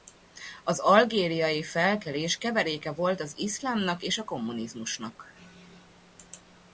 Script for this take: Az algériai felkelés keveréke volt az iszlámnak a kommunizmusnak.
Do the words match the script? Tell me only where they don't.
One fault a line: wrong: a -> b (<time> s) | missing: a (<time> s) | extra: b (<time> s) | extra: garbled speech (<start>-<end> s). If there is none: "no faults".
extra: és (4.0 s)